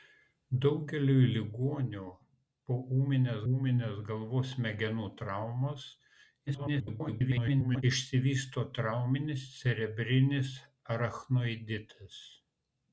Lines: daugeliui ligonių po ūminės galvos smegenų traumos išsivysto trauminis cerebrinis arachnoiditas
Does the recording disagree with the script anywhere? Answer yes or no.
yes